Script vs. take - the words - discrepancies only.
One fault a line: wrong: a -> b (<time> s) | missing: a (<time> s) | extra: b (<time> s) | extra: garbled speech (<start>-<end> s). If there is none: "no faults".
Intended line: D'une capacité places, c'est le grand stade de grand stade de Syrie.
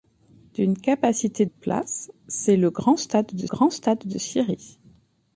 no faults